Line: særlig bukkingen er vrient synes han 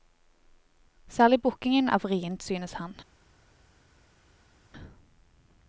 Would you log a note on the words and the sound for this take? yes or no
no